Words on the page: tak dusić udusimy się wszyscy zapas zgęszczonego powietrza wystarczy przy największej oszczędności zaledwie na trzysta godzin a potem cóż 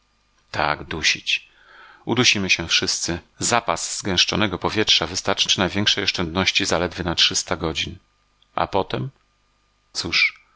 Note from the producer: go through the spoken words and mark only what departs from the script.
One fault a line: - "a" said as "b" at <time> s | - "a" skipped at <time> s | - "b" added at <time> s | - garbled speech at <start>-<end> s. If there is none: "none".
none